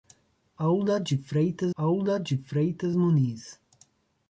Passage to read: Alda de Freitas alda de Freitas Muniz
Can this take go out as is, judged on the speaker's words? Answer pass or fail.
pass